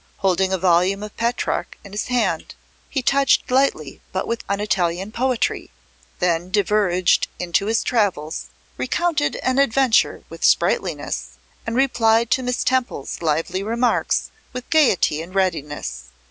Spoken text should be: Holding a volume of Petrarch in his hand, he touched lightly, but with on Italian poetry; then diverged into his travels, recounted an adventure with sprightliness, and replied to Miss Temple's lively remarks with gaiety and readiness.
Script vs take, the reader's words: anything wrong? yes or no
no